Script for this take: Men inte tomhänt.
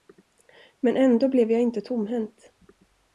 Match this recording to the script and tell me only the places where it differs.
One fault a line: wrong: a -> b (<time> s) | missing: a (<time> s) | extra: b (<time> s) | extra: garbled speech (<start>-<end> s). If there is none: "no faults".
extra: ändå blev jag (1.0 s)